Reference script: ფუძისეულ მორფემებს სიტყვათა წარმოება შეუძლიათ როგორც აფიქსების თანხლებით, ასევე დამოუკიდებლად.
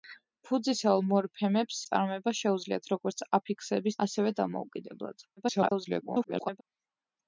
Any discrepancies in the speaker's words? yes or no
yes